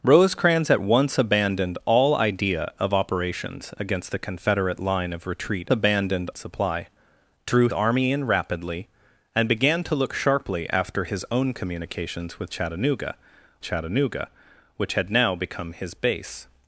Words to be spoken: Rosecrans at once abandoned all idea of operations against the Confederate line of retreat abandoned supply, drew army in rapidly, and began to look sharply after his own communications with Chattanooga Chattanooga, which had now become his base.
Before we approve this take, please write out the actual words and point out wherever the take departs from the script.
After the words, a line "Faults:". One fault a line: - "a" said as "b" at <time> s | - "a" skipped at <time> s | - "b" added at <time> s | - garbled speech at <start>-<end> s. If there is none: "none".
Rosecrans at once abandoned all idea of operations against the Confederate line of retreat abandoned supply, drew army in rapidly, and began to look sharply after his own communications with Chattanooga Chattanooga, which had now become his base.
Faults:
none